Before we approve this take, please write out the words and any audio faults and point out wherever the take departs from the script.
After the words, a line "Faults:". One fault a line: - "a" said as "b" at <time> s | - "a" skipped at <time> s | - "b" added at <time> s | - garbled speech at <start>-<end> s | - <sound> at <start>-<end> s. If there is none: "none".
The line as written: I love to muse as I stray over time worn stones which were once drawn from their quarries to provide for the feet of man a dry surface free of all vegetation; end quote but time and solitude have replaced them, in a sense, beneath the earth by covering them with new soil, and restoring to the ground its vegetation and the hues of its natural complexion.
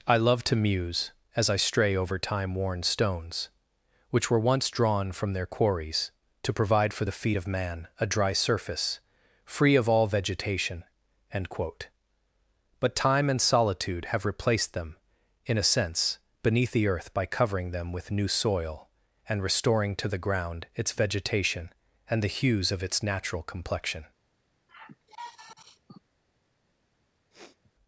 I love to muse as I stray over time worn stones which were once drawn from their quarries to provide for the feet of man a dry surface free of all vegetation; end quote but time and solitude have replaced them, in a sense, beneath the earth by covering them with new soil, and restoring to the ground its vegetation and the hues of its natural complexion.
Faults:
- sigh at 24.7-26.0 s
- sniff at 27.3-27.7 s